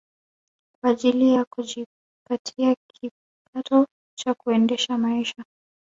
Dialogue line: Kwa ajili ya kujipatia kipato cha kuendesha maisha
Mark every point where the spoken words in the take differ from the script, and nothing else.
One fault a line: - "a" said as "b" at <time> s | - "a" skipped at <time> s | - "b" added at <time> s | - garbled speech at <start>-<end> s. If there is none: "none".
none